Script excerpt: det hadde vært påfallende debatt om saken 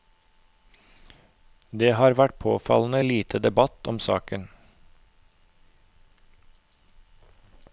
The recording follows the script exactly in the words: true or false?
false